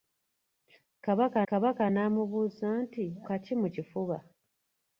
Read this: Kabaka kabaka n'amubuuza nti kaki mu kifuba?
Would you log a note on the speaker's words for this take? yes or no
no